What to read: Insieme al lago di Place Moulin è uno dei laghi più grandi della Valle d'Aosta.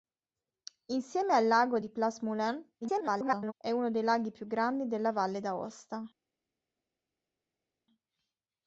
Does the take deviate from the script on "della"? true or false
false